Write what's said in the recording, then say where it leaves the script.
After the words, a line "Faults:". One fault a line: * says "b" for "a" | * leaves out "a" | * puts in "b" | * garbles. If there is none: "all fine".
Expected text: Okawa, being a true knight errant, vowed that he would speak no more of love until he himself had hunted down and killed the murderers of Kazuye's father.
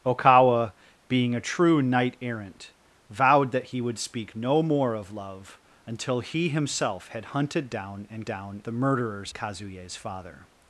Okawa, being a true knight errant, vowed that he would speak no more of love until he himself had hunted down and down the murderers Kazuye's father.
Faults:
* says "down" for "killed"
* leaves out "of"